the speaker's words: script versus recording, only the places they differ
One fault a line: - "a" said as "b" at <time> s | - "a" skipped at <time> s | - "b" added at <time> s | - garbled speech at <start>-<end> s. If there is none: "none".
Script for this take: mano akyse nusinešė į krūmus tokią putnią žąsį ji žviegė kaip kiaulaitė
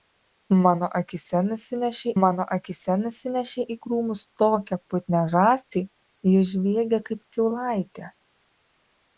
- "mano akyse nusinešė" added at 2.2 s